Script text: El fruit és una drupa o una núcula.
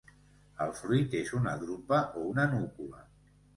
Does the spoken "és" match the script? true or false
true